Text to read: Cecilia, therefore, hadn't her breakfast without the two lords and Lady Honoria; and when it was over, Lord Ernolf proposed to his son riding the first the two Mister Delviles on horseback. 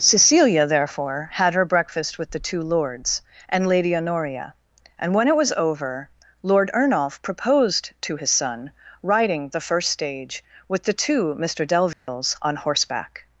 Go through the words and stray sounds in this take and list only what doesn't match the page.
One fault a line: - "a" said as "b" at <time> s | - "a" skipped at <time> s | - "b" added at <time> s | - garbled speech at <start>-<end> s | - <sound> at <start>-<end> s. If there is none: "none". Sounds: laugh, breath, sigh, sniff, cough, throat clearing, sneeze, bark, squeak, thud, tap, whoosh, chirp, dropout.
- "hadn't" said as "had" at 1.3 s
- "without" said as "with" at 2.2 s
- "stage with" added at 9.9 s
- dropout at 11.9-12.1 s